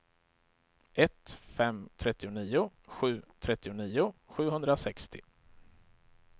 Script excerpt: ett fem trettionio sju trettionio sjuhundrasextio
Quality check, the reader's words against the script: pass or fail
pass